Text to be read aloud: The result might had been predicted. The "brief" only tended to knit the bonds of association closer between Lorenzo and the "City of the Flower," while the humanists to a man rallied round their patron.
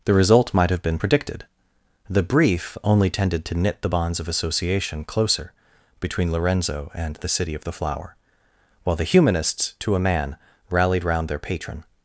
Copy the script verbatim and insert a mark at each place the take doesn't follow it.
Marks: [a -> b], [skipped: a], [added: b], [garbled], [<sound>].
The result might [had -> have] been predicted. The "brief" only tended to knit the bonds of association closer between Lorenzo and the "City of the Flower," while the humanists to a man rallied round their patron.